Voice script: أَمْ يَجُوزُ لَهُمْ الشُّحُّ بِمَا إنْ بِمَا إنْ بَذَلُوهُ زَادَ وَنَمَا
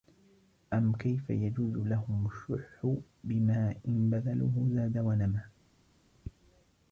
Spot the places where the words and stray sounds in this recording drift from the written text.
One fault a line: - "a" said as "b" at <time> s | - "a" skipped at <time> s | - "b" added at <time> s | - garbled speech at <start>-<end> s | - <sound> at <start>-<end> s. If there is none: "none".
- "كَيْفَ" added at 0.9 s
- "بِمَا إنْ" skipped at 4.1 s